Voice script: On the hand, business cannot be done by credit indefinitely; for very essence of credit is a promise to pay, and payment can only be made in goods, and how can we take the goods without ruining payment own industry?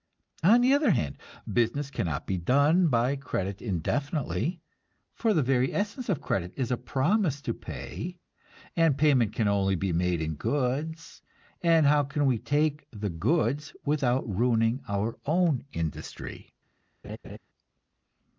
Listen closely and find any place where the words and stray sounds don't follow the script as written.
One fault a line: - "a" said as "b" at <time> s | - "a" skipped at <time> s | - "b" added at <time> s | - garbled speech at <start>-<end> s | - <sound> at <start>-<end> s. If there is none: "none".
- "other" added at 0.7 s
- "the" added at 5.3 s
- "payment" said as "our" at 14.9 s
- laugh at 17.0-17.4 s